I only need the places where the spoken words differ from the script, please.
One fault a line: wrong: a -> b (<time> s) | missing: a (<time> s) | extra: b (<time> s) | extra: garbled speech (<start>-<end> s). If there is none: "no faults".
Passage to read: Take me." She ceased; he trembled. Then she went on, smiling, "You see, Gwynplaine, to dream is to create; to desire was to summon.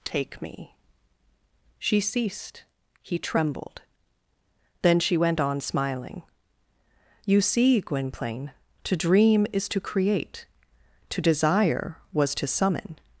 no faults